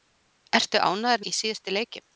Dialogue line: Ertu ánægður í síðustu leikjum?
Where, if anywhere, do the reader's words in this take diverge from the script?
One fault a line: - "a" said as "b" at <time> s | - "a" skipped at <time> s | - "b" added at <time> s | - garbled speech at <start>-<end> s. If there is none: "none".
none